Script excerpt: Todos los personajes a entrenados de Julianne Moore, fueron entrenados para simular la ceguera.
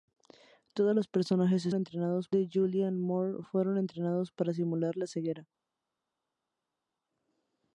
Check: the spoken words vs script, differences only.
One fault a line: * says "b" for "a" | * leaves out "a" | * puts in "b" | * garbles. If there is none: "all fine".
all fine